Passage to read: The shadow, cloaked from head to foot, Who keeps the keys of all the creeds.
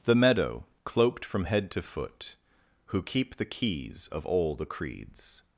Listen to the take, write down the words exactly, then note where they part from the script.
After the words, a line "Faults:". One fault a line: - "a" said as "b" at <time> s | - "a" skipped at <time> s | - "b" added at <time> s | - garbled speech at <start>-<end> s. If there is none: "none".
The meadow, cloaked from head to foot, Who keep the keys of all the creeds.
Faults:
- "shadow" said as "meadow" at 0.1 s
- "keeps" said as "keep" at 3.0 s